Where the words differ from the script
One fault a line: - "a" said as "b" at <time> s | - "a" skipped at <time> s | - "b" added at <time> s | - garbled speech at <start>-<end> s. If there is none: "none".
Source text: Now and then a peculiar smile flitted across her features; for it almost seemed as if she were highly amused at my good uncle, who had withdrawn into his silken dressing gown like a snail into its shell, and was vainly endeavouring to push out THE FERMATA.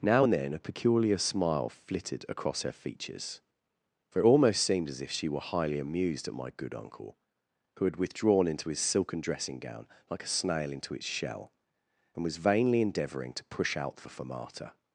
none